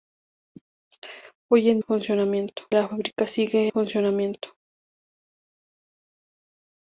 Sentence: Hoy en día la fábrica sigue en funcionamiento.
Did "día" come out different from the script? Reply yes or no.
yes